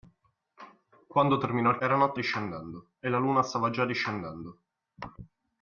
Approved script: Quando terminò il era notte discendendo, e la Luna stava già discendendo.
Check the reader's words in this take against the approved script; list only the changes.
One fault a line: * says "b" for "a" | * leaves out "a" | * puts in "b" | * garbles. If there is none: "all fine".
all fine